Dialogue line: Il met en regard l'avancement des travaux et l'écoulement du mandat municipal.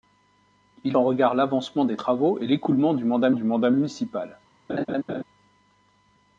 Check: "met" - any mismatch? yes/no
yes